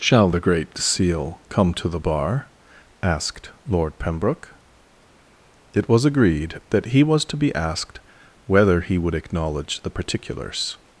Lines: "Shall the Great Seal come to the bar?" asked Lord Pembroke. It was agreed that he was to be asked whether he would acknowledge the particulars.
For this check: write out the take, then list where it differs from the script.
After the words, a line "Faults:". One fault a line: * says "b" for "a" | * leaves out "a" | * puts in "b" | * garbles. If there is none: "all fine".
"Shall the Great Seal come to the bar?" asked Lord Pembroke. It was agreed that he was to be asked whether he would acknowledge the particulars.
Faults:
all fine